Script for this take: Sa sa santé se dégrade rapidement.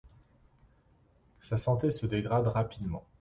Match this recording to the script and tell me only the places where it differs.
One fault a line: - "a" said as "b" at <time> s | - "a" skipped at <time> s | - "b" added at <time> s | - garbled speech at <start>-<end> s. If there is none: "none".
- "sa" skipped at 1.6 s